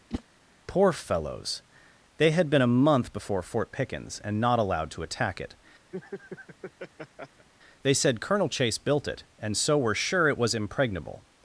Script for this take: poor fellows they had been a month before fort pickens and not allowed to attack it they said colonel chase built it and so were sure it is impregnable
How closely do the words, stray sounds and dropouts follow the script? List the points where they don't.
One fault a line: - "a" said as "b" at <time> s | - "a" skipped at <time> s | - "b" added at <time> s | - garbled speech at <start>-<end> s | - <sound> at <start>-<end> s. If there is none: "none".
- whoosh at 0.1-0.2 s
- laugh at 5.9-7.5 s
- "is" said as "was" at 10.4 s